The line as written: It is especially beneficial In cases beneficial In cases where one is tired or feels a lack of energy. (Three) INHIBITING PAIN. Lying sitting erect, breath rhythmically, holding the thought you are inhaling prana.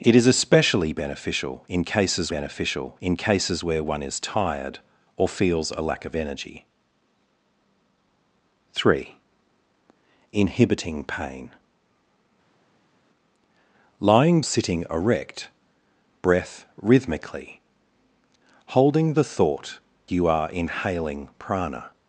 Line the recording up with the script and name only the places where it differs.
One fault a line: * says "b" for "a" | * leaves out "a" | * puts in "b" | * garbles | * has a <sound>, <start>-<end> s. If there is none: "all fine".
all fine